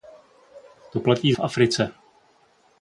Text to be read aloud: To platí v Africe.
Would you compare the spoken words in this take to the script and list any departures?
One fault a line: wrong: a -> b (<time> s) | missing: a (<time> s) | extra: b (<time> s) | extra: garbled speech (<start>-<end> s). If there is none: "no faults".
no faults